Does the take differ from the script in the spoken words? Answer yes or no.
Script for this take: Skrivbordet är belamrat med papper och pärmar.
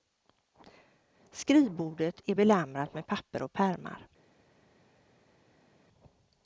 no